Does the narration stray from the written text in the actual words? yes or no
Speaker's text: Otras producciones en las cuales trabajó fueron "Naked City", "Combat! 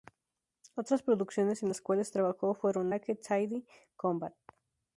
no